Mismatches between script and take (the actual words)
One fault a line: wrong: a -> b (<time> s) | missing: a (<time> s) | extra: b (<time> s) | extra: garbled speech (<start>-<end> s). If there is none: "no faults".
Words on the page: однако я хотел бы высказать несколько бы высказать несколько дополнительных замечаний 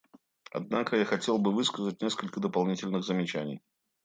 missing: бы высказать несколько (2.4 s)